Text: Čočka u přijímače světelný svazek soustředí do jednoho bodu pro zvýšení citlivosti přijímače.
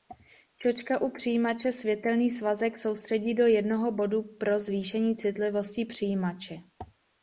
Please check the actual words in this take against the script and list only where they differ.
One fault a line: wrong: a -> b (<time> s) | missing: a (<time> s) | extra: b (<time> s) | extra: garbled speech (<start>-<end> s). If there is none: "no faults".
no faults